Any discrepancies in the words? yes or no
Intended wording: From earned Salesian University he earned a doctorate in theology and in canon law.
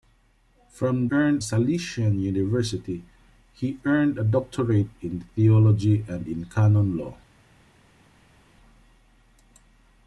no